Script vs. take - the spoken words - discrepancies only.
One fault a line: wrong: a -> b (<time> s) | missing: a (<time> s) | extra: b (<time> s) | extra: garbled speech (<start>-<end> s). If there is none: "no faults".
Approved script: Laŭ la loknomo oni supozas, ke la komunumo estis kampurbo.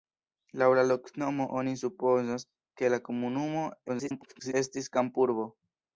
extra: garbled speech (3.9-4.5 s)